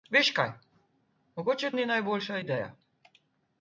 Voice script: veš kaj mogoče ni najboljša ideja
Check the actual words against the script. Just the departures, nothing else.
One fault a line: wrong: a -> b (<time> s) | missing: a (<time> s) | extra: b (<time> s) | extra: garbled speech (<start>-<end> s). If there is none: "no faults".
no faults